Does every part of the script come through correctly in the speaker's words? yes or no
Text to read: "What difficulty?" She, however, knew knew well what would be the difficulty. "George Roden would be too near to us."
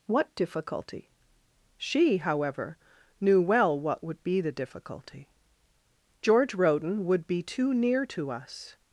no